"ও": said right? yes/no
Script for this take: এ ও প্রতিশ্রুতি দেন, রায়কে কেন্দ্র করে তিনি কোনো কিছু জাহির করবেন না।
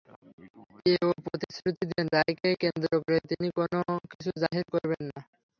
yes